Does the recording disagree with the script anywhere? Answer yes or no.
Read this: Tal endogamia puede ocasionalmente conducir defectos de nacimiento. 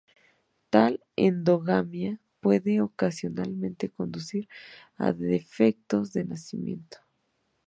yes